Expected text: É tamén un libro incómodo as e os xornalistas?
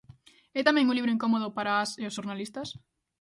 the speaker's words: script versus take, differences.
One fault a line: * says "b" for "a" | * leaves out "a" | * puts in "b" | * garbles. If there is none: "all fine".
* puts in "para"